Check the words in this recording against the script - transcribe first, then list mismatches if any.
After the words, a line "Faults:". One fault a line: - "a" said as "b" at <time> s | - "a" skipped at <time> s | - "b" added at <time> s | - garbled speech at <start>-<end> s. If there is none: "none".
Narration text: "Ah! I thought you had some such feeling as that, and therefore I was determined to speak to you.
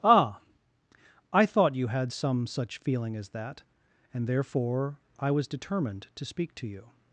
"Ah! I thought you had some such feeling as that, and therefore I was determined to speak to you.
Faults:
none